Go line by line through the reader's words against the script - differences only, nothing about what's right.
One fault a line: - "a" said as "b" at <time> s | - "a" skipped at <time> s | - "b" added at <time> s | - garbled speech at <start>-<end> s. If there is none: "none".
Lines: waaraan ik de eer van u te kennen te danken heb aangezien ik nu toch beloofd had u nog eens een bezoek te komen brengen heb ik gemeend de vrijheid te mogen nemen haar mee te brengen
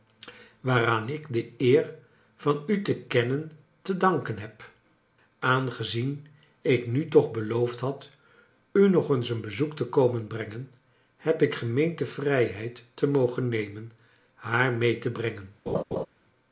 none